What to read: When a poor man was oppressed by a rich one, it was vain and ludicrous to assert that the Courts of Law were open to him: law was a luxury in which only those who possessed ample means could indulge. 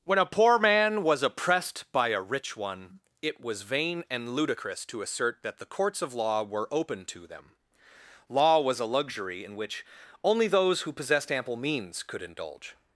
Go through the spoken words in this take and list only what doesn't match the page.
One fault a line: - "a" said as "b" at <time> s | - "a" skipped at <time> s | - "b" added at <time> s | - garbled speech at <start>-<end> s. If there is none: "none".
- "him" said as "them" at 7.3 s